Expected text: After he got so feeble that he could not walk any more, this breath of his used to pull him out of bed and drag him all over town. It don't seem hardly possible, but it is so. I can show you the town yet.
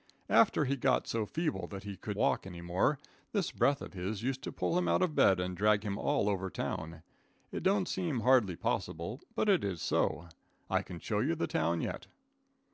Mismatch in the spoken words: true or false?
true